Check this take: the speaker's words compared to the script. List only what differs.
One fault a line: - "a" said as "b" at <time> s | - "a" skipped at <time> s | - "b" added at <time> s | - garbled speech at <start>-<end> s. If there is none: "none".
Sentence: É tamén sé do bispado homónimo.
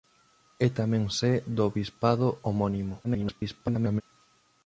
- garbled speech at 3.0-4.0 s